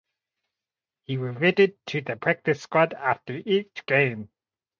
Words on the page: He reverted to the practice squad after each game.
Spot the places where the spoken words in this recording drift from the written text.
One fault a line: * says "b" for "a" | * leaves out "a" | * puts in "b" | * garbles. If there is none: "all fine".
all fine